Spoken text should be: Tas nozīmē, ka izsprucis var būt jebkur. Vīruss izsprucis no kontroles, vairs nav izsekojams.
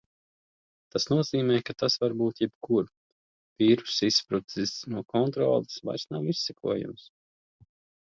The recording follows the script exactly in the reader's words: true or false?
false